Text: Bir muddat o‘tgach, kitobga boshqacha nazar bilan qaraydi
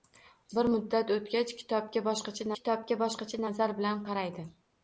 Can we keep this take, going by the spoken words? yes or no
no